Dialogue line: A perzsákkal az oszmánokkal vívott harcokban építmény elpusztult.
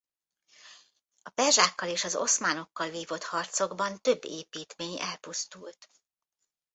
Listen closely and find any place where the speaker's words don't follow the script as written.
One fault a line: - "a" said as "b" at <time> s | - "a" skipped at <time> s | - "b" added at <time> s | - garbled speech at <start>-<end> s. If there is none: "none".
- "és" added at 1.9 s
- "több" added at 4.0 s